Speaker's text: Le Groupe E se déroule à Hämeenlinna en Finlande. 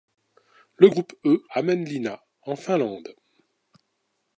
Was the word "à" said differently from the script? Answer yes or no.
yes